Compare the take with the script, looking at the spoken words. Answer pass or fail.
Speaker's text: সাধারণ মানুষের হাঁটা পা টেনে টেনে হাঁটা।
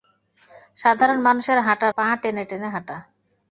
pass